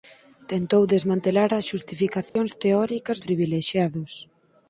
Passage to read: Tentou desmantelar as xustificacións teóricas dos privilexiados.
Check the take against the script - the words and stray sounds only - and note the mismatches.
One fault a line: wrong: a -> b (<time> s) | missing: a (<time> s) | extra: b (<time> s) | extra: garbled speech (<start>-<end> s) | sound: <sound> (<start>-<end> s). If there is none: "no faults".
sound: dropout (2.3-2.4 s)
missing: dos (3.2 s)